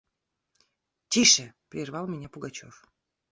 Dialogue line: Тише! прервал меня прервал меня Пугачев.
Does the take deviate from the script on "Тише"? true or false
false